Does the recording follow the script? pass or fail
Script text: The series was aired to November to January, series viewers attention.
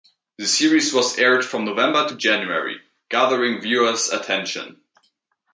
fail